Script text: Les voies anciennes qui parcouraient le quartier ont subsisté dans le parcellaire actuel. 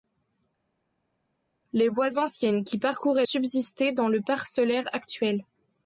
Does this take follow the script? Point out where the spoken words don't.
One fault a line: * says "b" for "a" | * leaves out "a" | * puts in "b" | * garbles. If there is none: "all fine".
* leaves out "le quartier ont"